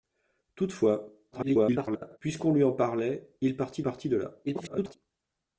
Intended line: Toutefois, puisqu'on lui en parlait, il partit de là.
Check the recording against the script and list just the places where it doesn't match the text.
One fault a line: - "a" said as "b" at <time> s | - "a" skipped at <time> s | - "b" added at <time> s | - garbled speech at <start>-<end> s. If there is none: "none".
- garbled speech at 1.3-2.2 s
- "partit" added at 3.8 s
- garbled speech at 4.5-5.0 s